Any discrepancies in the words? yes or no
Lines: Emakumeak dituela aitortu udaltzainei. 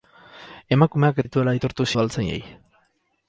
no